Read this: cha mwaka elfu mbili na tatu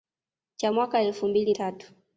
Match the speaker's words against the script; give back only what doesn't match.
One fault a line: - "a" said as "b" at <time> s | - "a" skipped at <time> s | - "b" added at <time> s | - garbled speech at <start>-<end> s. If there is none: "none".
- "na" skipped at 1.5 s